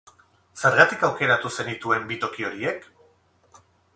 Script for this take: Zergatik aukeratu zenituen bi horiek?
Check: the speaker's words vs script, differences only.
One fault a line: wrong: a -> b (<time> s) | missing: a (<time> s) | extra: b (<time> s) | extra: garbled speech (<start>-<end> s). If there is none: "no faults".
extra: toki (2.2 s)